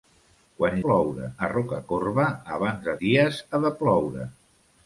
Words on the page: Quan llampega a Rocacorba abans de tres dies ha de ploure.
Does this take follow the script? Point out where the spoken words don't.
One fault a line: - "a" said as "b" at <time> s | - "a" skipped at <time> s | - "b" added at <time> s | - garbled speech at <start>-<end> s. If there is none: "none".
- "llampega" said as "ploure" at 0.9 s
- "tres" skipped at 3.0 s